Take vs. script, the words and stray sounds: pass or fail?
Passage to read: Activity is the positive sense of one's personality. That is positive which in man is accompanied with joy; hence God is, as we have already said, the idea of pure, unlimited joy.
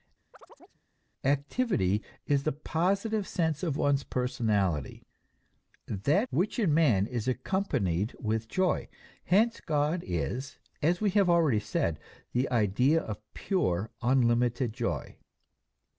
fail